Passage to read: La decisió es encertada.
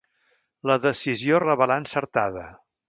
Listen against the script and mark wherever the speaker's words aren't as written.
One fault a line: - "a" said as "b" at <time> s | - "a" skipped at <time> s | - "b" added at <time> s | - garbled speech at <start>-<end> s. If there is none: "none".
- "revelà" added at 1.4 s